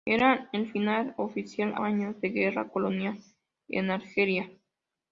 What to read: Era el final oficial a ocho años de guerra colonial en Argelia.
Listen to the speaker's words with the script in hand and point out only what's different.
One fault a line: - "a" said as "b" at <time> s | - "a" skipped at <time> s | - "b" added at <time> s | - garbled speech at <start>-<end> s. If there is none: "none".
- "a ocho" skipped at 1.7 s